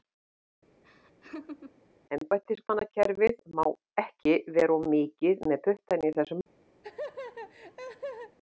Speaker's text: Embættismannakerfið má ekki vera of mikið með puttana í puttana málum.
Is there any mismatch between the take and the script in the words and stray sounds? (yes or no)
yes